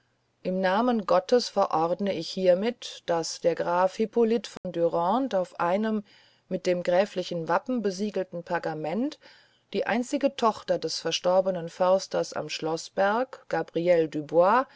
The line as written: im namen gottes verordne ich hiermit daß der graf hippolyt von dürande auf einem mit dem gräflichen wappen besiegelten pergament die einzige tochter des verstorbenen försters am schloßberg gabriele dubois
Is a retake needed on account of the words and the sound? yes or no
yes